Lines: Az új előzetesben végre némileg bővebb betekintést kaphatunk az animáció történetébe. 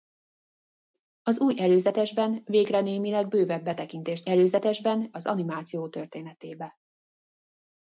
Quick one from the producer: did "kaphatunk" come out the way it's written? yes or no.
no